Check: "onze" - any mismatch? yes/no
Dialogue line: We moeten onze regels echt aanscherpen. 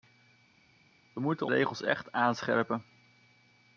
yes